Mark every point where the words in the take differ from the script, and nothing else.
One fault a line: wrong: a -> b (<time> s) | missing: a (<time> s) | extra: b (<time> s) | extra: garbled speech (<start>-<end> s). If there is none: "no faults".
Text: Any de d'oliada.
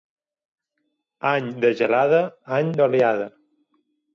extra: gelada any (1.8 s)